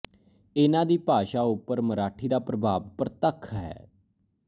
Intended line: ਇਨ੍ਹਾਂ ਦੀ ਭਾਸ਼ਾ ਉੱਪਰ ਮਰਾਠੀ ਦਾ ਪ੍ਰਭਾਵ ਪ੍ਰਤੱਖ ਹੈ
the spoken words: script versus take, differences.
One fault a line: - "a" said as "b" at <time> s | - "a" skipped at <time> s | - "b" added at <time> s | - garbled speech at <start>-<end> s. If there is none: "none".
none